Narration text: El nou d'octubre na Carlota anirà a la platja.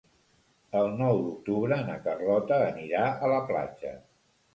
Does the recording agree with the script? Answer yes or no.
yes